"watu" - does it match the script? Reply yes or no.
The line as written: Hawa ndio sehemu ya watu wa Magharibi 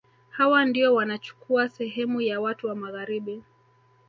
yes